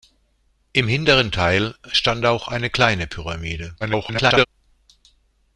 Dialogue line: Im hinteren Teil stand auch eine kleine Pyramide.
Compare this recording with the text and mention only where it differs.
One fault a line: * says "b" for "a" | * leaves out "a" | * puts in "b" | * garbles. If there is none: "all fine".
* garbles